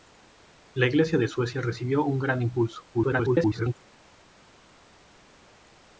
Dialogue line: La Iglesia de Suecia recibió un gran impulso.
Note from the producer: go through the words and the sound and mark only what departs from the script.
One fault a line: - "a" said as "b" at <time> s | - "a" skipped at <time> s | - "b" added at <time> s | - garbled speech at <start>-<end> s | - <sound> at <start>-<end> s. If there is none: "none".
- garbled speech at 2.9-3.7 s